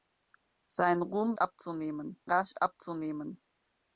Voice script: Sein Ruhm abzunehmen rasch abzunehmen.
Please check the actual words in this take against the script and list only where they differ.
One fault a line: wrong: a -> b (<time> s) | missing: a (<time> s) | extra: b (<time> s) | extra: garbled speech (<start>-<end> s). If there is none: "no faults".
no faults